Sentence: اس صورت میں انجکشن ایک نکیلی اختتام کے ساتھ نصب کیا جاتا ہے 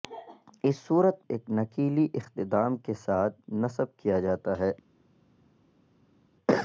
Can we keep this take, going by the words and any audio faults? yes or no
no